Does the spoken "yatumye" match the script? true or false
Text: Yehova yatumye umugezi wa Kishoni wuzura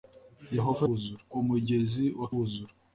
false